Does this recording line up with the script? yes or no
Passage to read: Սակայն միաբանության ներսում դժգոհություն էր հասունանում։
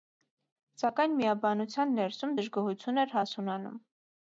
yes